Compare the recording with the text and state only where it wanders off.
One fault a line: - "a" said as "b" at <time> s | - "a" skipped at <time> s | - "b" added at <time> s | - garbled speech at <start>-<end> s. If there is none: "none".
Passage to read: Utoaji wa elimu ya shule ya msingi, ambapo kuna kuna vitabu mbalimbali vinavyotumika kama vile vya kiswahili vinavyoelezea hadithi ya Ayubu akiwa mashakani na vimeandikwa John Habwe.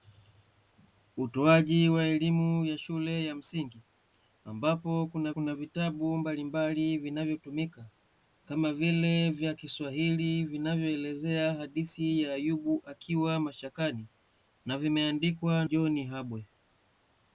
none